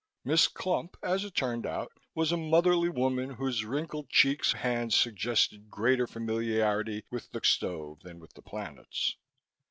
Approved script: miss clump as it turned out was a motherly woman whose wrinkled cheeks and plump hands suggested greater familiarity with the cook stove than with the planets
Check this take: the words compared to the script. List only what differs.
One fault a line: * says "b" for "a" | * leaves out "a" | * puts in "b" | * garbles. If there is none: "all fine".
* leaves out "and plump"
* leaves out "cook"